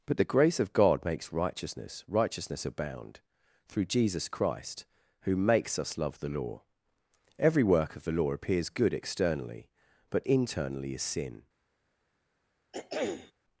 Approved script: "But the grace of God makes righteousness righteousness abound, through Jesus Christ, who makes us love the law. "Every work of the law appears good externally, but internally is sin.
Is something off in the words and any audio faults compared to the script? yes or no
yes